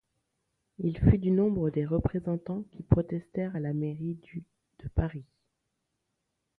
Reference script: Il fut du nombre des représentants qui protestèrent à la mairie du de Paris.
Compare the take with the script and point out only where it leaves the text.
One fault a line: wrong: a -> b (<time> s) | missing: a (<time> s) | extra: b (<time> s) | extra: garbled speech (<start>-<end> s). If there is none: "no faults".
no faults